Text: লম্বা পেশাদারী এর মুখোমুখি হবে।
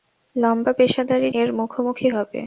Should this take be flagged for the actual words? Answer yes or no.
no